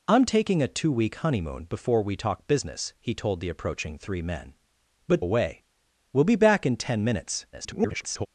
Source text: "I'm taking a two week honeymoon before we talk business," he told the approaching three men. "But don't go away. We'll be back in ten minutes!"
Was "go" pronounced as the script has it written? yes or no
no